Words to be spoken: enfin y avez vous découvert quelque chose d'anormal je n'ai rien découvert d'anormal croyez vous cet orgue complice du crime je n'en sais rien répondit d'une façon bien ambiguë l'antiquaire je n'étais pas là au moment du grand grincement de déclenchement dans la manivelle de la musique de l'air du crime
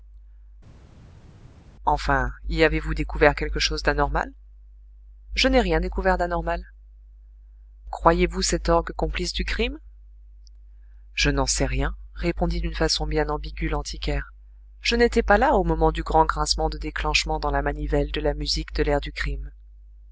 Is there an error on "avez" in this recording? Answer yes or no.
no